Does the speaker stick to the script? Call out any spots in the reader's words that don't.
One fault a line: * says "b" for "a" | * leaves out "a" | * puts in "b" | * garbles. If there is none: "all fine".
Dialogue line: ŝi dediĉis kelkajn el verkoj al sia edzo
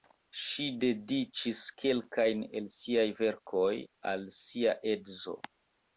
* puts in "siaj"